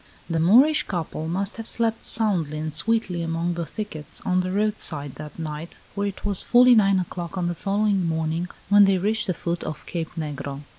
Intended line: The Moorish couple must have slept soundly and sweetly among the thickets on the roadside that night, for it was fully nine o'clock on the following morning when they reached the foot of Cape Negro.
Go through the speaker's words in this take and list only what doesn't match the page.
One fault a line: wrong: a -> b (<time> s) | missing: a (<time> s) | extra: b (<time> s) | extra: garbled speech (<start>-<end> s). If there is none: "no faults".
no faults